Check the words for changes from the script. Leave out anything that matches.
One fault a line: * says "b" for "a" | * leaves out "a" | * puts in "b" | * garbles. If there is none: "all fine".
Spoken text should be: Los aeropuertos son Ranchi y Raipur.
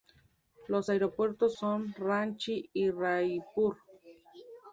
all fine